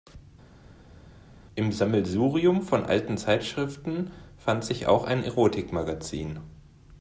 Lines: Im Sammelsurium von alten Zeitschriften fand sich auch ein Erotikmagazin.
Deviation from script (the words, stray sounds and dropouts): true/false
false